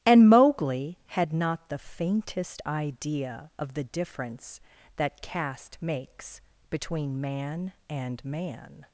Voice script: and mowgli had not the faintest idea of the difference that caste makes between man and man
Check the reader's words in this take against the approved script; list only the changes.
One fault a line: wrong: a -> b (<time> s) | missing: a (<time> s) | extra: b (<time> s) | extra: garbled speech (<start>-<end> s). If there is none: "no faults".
no faults